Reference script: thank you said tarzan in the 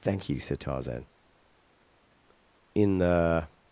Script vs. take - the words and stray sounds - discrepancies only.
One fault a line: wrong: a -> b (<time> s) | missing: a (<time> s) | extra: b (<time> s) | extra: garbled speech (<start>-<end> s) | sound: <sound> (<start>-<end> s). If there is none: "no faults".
no faults